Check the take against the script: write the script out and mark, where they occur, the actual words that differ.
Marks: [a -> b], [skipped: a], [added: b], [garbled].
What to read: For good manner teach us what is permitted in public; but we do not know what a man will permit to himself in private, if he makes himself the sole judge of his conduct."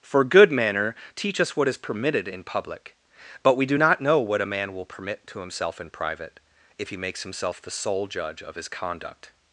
For good manner teach us what is permitted in public; but we do not know what a man will permit to himself in private, if he makes himself the sole judge of his conduct."